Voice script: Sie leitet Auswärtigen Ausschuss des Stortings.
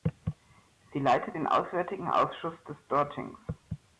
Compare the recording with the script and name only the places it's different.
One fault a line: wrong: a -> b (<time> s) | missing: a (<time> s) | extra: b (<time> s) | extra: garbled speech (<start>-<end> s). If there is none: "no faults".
extra: den (1.3 s)